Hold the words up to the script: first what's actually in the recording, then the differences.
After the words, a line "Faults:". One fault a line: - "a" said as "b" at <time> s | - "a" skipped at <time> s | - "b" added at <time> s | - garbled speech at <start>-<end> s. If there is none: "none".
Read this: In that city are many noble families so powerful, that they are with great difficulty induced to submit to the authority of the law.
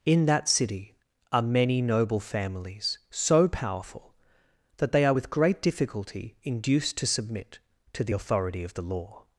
In that city are many noble families so powerful, that they are with great difficulty induced to submit to the authority of the law.
Faults:
none